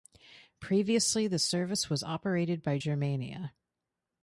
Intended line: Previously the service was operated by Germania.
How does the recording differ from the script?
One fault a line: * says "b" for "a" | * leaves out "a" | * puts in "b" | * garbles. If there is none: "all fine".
all fine